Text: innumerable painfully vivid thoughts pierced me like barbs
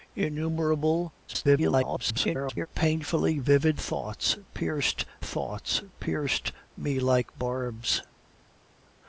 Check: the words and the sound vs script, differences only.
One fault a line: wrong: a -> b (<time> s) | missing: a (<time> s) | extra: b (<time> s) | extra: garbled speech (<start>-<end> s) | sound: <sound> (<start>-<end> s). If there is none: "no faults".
extra: garbled speech (1.3-2.7 s)
extra: thoughts pierced (5.2 s)